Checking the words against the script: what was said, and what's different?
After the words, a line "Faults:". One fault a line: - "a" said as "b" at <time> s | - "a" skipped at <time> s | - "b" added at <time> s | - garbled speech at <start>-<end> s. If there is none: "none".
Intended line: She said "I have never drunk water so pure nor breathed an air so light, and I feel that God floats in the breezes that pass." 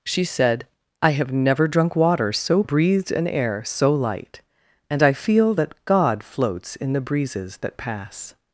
She said "I have never drunk water so breathed an air so light, and I feel that God floats in the breezes that pass."
Faults:
- "pure nor" skipped at 2.6 s